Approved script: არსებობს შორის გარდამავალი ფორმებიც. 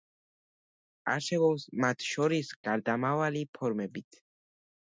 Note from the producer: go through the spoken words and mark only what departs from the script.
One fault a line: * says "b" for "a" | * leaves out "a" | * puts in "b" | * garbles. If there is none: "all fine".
* puts in "მათ"